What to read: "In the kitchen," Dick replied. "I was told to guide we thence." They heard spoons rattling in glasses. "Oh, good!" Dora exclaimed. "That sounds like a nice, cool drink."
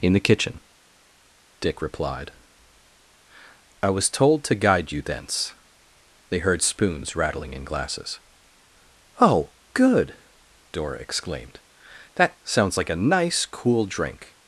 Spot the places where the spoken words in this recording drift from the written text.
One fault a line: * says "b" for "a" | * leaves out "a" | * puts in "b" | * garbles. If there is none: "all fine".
* says "you" for "we"